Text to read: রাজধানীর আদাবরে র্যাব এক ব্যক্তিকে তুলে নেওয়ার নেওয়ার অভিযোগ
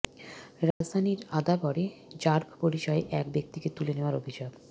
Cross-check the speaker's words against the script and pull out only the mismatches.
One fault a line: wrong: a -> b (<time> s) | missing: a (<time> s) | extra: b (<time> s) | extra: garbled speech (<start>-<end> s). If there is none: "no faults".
extra: পরিচয়ে (2.6 s)
missing: নেওয়ার (4.2 s)